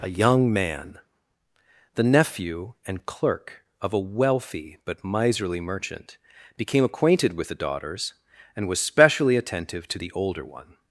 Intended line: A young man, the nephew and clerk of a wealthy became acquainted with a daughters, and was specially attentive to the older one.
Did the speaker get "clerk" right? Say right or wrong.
right